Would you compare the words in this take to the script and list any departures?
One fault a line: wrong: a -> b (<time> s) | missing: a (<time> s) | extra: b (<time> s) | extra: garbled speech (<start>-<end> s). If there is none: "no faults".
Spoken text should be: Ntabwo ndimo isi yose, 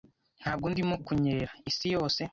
extra: kunyerera (1.1 s)